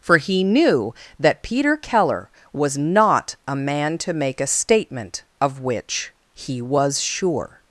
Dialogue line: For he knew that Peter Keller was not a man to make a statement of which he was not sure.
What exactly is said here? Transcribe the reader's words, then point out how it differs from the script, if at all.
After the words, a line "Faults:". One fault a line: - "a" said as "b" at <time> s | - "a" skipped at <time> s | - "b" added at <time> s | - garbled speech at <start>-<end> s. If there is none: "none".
For he knew that Peter Keller was not a man to make a statement of which he was sure.
Faults:
- "not" skipped at 7.0 s